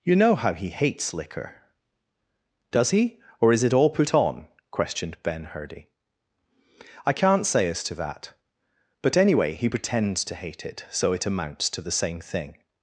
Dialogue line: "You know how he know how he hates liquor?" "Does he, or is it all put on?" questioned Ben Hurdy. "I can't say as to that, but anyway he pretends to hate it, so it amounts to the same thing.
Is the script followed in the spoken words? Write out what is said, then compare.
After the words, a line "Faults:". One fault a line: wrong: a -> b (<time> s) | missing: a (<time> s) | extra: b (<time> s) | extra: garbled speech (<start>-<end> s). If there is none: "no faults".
"You know how he hates liquor?" "Does he, or is it all put on?" questioned Ben Hurdy. "I can't say as to that, but anyway he pretends to hate it, so it amounts to the same thing.
Faults:
missing: know how he (0.7 s)